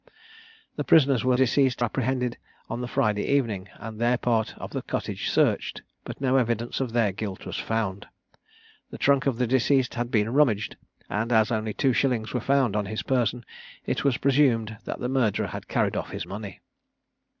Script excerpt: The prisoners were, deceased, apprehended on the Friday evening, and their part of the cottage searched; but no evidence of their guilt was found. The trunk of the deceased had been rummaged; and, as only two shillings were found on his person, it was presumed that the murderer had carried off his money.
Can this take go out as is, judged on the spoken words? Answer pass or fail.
pass